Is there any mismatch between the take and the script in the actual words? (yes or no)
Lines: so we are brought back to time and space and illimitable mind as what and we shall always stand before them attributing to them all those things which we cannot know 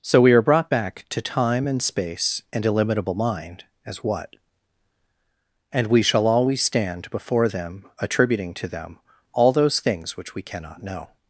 no